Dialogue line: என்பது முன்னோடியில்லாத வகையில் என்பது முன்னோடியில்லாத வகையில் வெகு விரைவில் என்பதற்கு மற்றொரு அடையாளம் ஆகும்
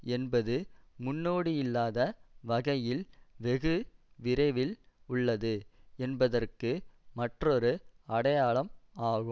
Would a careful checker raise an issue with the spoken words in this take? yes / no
yes